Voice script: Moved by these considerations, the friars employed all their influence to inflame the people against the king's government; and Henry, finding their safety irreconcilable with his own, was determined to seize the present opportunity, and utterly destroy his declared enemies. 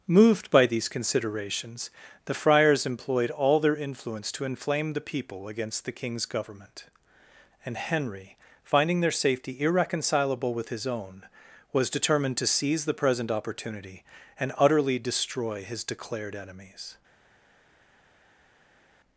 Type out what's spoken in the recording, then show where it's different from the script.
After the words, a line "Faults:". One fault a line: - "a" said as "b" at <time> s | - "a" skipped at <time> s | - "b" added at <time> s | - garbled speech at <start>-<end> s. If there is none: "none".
Moved by these considerations, the friars employed all their influence to inflame the people against the king's government; and Henry, finding their safety irreconcilable with his own, was determined to seize the present opportunity, and utterly destroy his declared enemies.
Faults:
none